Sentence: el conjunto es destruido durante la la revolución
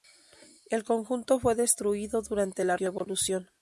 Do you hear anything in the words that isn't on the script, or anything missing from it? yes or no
yes